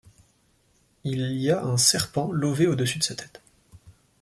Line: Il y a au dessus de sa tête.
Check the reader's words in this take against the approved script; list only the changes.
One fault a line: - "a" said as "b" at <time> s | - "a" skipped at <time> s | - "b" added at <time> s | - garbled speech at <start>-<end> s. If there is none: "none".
- "un serpent lové" added at 1.6 s